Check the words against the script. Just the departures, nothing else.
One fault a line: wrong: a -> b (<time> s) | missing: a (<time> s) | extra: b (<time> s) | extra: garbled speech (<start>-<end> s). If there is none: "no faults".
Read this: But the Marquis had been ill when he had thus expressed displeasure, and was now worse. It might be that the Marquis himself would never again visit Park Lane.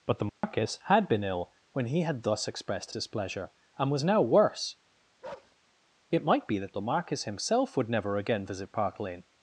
no faults